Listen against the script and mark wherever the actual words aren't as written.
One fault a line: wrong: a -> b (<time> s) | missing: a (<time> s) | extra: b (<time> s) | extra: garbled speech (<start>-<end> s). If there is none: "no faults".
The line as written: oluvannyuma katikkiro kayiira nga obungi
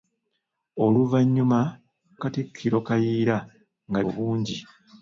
no faults